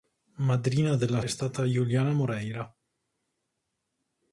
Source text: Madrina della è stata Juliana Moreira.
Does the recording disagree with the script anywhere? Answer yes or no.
no